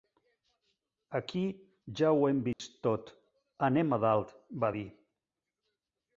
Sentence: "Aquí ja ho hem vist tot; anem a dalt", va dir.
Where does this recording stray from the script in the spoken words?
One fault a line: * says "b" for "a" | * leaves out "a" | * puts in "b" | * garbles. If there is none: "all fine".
all fine